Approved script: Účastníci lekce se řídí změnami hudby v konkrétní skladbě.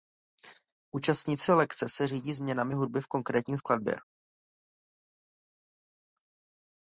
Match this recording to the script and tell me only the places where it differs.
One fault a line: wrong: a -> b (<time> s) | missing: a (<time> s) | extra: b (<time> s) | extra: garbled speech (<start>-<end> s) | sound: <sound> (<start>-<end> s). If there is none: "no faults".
no faults